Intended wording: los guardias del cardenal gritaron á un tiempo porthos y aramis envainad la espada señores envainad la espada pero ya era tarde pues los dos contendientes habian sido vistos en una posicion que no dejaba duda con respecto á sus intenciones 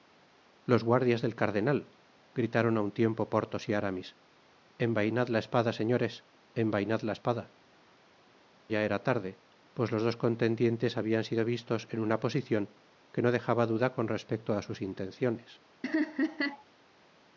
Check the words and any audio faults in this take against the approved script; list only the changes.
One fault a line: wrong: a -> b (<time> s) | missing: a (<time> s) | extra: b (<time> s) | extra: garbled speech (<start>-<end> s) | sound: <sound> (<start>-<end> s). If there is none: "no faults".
missing: pero (7.4 s)
sound: laugh (15.8-16.6 s)